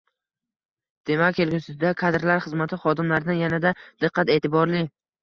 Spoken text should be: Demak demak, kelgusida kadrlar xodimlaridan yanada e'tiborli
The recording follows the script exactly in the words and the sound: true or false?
false